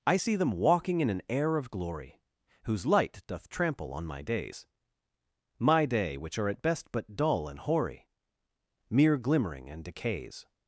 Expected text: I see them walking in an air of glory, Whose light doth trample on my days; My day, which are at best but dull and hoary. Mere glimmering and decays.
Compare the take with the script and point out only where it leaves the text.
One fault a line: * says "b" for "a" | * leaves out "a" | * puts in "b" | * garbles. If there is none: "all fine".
all fine